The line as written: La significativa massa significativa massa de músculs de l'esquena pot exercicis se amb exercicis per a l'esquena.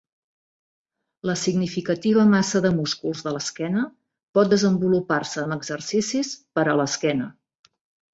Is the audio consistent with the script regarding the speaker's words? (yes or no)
no